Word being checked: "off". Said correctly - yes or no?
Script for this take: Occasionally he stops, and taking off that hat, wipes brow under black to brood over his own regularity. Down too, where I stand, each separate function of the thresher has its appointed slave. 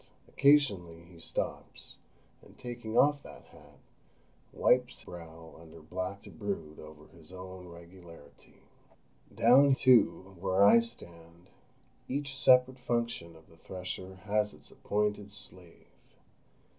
yes